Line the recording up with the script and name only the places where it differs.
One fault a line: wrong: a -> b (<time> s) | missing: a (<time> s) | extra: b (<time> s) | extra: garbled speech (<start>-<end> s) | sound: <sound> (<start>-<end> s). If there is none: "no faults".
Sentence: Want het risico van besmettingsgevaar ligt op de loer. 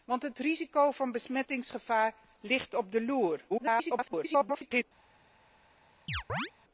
extra: garbled speech (3.5-4.8 s)
sound: chirp (6.1-6.5 s)